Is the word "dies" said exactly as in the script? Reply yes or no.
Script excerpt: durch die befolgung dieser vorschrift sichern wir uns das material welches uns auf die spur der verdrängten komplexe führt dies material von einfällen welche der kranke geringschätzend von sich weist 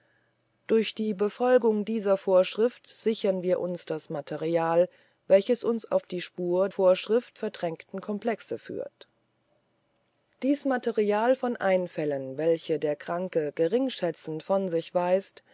yes